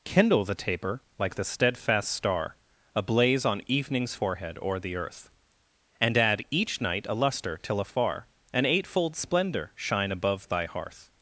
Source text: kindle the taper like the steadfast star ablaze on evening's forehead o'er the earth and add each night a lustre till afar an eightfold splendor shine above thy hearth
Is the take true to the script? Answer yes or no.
yes